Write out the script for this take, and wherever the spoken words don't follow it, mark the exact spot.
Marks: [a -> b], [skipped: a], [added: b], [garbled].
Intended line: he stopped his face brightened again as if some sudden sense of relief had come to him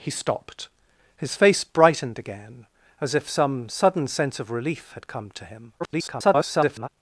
he stopped his face brightened again as if some sudden sense of relief had come to him [garbled]